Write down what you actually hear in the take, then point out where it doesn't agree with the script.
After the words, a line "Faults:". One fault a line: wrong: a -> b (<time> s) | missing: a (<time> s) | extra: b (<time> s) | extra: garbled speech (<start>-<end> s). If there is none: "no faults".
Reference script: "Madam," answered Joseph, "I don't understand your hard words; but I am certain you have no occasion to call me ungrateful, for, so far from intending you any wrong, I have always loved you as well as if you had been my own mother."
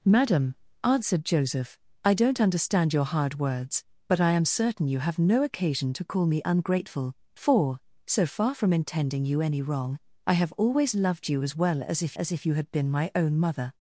"Madam," answered Joseph, "I don't understand your hard words; but I am certain you have no occasion to call me ungrateful, for, so far from intending you any wrong, I have always loved you as well as if as if you had been my own mother."
Faults:
extra: as if (12.1 s)